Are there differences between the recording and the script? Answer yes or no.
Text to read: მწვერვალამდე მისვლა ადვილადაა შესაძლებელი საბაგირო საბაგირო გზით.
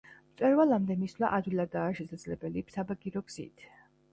yes